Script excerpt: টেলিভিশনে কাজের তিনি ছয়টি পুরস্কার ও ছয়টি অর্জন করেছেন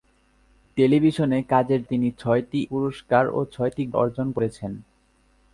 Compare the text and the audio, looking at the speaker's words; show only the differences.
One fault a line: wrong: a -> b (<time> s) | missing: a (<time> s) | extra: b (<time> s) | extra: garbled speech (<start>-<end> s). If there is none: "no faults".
no faults